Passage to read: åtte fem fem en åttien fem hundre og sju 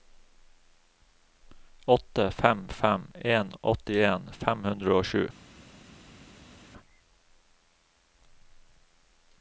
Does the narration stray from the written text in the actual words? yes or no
no